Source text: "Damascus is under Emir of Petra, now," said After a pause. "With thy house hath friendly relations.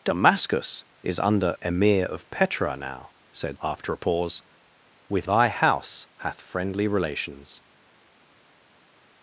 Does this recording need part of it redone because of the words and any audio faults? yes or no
no